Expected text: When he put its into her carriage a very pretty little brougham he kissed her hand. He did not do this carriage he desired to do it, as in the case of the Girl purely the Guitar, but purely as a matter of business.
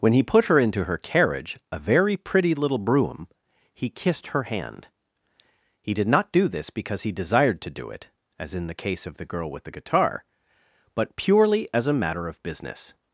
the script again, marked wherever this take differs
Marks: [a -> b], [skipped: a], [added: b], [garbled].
When he put [its -> her] into her carriage a very pretty little brougham he kissed her hand. He did not do this [carriage -> because] he desired to do it, as in the case of the Girl [purely -> with] the Guitar, but purely as a matter of business.